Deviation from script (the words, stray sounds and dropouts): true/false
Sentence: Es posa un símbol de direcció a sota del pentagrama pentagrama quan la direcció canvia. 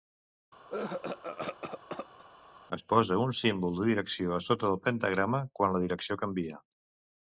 true